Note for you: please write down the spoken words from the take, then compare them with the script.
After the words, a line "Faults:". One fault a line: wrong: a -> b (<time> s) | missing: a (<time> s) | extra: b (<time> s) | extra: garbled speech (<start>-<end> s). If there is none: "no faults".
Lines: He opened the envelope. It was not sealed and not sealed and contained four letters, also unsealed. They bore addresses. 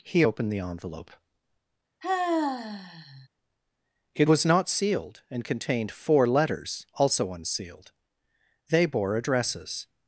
He opened the envelope. It was not sealed and contained four letters, also unsealed. They bore addresses.
Faults:
missing: not sealed and (5.4 s)